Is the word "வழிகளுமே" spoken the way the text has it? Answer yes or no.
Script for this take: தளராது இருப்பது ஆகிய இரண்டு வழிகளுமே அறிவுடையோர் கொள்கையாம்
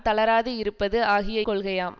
no